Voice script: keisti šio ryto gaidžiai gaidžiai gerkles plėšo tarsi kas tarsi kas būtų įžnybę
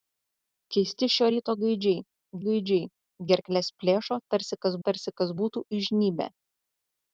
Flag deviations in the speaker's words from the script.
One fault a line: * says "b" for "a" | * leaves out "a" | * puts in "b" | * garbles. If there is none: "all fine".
all fine